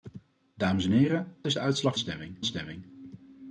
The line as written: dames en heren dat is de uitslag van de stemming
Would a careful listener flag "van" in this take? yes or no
yes